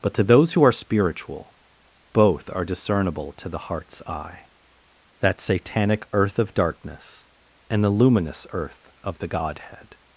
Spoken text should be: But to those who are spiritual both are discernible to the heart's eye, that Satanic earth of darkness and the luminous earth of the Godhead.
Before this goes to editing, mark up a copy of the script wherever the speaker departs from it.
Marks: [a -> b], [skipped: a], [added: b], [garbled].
But to those who are spiritual both are discernible to the heart's eye, that Satanic earth of darkness and the luminous earth of the Godhead.